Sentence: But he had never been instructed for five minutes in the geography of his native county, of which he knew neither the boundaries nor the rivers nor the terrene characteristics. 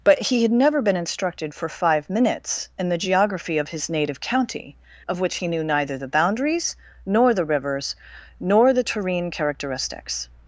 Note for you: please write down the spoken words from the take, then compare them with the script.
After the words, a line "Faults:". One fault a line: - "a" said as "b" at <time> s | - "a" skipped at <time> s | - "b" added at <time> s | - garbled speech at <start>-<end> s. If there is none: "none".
But he had never been instructed for five minutes in the geography of his native county, of which he knew neither the boundaries nor the rivers nor the terrene characteristics.
Faults:
none